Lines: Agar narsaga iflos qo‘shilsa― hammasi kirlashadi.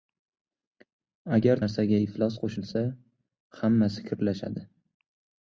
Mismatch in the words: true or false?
false